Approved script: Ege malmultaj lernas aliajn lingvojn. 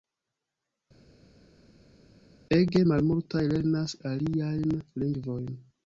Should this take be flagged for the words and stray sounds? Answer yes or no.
no